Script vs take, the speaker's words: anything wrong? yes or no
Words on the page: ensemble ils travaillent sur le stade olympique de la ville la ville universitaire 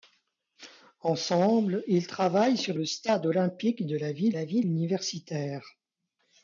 no